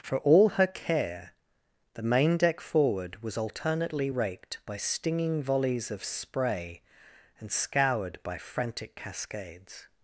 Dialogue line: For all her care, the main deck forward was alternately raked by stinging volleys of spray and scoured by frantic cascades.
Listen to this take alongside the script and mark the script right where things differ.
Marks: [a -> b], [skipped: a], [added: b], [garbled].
For all her care, the main deck forward was alternately raked by stinging volleys of spray and scoured by frantic cascades.